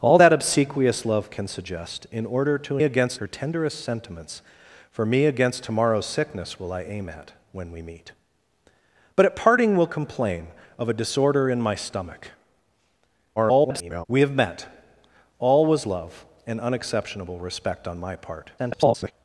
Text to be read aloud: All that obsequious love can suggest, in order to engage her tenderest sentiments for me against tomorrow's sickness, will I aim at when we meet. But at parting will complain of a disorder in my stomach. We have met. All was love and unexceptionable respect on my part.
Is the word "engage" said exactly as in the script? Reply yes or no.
no